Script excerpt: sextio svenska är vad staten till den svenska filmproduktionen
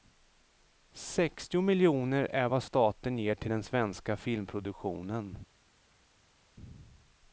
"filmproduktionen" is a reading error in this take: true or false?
false